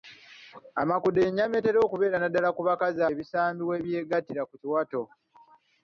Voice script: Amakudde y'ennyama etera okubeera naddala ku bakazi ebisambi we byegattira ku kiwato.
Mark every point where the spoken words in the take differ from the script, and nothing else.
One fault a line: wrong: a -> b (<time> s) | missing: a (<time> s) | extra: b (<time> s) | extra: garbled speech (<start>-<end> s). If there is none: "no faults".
no faults